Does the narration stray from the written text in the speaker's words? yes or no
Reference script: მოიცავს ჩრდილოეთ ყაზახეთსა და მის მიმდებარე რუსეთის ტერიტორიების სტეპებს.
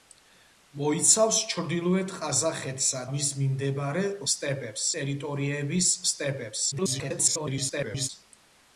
yes